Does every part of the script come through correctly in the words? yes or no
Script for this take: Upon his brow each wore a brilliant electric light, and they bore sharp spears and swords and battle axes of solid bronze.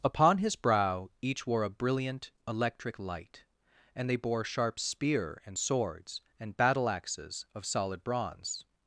no